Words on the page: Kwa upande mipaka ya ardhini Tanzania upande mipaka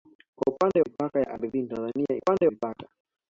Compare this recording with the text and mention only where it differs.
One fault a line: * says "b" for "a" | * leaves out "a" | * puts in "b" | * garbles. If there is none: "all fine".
all fine